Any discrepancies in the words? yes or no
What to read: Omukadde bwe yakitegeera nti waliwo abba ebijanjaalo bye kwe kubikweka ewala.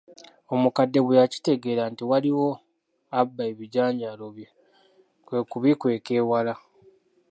no